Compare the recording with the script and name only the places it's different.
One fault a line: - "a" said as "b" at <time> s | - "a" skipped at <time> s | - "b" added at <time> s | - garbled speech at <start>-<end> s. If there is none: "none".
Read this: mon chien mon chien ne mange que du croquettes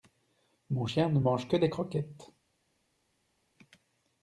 - "mon chien" skipped at 1.1 s
- "du" said as "des" at 1.6 s